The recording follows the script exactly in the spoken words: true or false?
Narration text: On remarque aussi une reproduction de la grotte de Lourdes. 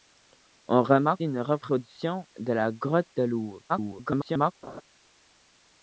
false